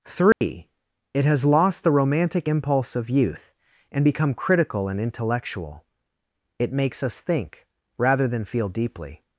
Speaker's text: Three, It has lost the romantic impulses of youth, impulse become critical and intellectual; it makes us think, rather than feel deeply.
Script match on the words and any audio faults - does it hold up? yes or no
no